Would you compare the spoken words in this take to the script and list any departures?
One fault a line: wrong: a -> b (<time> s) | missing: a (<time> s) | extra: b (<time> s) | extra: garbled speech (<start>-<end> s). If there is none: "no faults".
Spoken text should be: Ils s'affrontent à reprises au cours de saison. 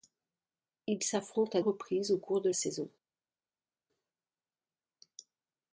no faults